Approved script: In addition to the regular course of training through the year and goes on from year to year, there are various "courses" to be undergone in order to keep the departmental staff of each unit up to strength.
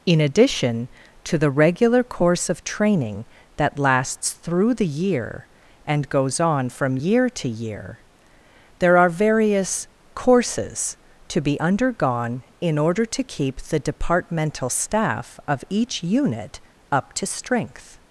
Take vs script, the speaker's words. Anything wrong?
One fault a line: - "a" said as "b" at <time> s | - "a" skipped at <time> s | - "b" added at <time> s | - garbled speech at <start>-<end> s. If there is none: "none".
- "that lasts" added at 3.6 s